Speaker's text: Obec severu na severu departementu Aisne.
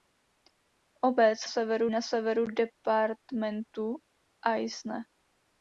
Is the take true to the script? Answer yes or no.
yes